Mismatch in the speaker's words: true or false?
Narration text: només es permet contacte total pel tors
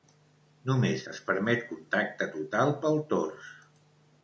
false